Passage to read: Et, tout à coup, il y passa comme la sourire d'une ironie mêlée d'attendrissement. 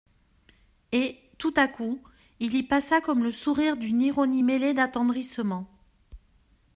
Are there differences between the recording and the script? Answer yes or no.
yes